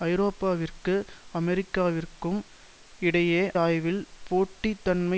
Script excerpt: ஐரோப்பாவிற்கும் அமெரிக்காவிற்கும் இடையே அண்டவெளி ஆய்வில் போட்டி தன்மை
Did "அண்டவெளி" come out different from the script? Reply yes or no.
yes